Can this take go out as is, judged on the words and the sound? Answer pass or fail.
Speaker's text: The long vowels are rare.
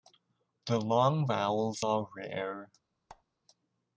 fail